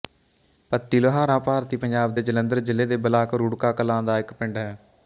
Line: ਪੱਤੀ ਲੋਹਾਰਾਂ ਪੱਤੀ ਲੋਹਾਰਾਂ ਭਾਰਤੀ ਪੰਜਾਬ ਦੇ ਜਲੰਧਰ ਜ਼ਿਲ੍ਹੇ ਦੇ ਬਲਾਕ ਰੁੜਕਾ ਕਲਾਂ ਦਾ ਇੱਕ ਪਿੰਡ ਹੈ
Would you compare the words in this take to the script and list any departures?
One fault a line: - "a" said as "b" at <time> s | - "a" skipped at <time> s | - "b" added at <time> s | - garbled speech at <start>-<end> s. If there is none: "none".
- "ਪੱਤੀ ਲੋਹਾਰਾਂ" skipped at 1.4 s